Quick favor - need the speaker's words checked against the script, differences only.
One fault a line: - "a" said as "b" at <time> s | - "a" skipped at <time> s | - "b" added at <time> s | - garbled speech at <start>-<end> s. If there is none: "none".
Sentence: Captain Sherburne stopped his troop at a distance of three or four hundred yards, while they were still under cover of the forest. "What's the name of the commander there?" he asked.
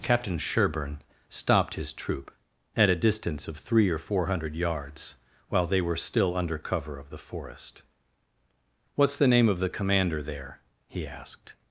none